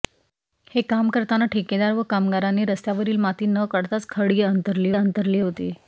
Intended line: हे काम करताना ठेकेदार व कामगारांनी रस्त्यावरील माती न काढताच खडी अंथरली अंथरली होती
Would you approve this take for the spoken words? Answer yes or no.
yes